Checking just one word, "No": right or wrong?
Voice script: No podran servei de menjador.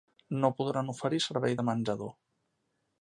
right